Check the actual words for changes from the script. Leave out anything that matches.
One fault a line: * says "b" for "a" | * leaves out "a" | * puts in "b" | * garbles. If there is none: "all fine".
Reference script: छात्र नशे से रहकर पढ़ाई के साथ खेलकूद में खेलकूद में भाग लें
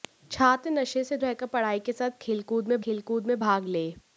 all fine